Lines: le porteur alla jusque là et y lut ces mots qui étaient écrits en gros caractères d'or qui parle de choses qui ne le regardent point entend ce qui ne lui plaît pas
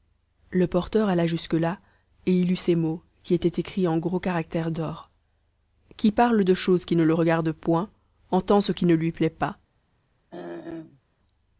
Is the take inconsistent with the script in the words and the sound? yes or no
yes